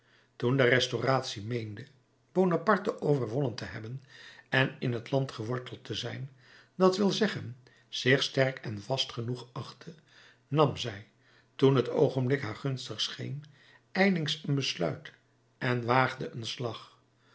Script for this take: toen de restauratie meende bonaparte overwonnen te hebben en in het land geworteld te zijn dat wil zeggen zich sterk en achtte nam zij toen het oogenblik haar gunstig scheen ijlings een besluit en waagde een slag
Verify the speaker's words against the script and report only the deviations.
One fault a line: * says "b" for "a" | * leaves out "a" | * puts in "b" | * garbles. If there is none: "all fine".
* puts in "vast genoeg"